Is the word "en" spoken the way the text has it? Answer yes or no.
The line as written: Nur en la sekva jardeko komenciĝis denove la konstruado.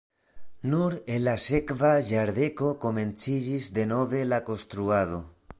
yes